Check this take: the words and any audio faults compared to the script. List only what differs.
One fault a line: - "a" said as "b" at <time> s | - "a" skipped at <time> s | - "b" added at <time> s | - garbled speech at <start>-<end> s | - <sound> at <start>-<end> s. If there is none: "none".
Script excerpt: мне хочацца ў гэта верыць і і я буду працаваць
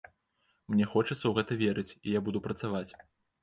- "і" skipped at 2.2 s